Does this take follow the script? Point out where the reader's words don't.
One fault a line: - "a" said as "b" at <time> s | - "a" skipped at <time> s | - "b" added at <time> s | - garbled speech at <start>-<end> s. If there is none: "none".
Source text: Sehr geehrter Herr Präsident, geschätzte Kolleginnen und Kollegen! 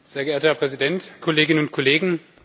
- "geschätzte" skipped at 1.0 s